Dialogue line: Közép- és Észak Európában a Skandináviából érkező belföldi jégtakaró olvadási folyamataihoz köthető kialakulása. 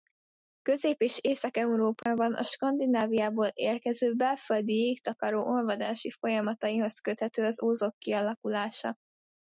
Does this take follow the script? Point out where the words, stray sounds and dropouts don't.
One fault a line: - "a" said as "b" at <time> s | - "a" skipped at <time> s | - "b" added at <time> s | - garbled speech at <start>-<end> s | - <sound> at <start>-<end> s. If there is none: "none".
- dropout at 2.0-2.1 s
- "az ózok" added at 7.4 s